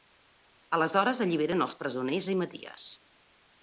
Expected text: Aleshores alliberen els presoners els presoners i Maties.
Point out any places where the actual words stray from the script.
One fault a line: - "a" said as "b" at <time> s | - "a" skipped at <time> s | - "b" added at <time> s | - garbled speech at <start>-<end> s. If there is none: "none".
- "els presoners" skipped at 2.4 s